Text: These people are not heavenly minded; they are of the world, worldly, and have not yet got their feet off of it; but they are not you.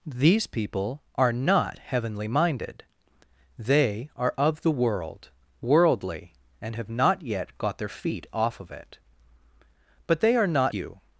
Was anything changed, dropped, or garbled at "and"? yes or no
no